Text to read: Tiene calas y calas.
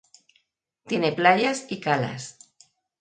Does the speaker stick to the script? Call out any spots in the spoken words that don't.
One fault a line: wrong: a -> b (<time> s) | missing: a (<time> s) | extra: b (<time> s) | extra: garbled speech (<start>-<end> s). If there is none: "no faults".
wrong: calas -> playas (1.1 s)